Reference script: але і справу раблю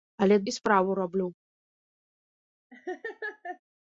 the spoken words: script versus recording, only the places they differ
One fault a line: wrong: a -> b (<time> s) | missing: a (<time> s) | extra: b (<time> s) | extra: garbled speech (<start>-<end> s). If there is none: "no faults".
no faults